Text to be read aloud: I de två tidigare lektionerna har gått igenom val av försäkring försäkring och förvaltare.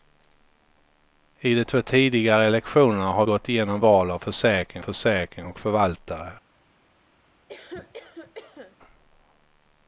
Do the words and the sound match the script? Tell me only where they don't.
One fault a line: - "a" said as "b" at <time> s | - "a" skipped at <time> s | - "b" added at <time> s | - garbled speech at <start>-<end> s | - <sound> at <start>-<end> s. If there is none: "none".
- cough at 7.5-8.8 s